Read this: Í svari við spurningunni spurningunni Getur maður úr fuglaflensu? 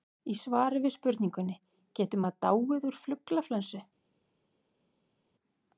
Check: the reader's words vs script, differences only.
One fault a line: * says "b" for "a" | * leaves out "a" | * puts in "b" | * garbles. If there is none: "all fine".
* leaves out "spurningunni"
* puts in "dáið"